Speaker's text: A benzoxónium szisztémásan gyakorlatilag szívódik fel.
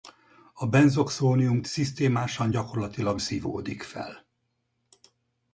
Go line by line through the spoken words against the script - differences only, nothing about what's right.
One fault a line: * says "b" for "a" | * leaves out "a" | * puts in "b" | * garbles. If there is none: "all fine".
all fine